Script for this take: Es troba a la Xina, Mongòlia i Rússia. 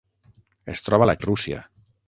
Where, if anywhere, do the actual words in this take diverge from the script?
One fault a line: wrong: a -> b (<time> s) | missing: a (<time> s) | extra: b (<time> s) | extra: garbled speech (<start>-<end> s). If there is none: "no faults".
missing: Xina Mongòlia (1.2 s)